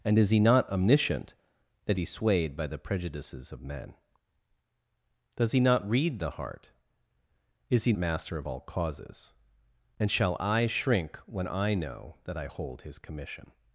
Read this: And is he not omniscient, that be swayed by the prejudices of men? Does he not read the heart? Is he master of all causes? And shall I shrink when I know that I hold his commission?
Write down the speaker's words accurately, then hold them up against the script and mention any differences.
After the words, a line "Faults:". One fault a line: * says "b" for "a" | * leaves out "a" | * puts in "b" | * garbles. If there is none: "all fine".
And is he not omniscient, that be swayed by the prejudices of men? Does he not read the heart? Is he master of all causes? And shall I shrink when I know that I hold his commission?
Faults:
all fine